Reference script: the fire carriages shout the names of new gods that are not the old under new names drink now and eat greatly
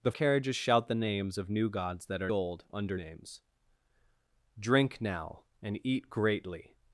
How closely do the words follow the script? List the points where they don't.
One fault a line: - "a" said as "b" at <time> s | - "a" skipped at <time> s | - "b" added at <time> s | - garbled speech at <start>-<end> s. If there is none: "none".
- "fire" skipped at 0.1 s
- "not the" skipped at 2.3 s
- "new" skipped at 3.0 s